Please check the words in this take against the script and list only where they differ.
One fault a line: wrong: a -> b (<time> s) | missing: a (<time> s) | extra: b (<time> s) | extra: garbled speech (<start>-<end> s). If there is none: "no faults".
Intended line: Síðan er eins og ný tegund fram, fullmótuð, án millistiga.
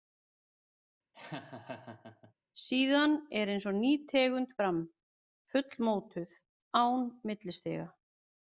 no faults